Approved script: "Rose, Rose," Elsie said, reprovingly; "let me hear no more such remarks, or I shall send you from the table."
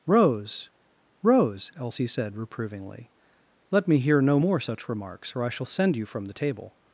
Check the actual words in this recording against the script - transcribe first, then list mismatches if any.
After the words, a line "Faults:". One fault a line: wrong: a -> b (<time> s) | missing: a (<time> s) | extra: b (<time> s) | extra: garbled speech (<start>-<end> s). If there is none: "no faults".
"Rose, Rose," Elsie said, reprovingly; "let me hear no more such remarks, or I shall send you from the table."
Faults:
no faults